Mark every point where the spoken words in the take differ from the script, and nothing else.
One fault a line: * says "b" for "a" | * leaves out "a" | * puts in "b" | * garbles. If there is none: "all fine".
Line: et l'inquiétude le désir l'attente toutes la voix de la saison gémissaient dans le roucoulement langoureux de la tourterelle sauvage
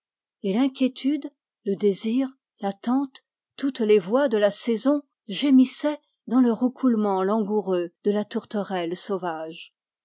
* says "les" for "la"